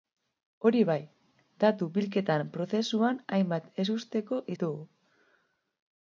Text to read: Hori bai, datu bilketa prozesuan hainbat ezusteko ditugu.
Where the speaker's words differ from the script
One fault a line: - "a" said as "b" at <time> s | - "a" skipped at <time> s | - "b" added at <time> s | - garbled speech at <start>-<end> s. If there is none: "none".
none